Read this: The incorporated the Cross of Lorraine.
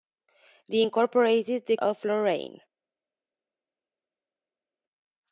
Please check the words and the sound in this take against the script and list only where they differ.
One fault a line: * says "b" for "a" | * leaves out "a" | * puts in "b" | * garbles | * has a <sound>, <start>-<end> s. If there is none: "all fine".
* leaves out "Cross"